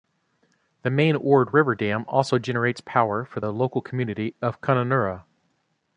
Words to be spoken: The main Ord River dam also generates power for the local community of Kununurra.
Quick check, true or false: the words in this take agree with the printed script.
true